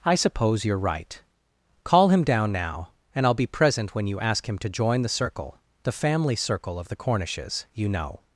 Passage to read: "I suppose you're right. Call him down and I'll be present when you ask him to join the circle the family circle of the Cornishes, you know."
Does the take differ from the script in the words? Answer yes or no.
yes